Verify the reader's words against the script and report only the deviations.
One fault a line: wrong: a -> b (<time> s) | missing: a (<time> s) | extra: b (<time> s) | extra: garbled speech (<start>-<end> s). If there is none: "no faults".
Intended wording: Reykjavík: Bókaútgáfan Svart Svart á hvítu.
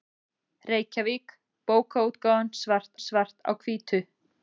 no faults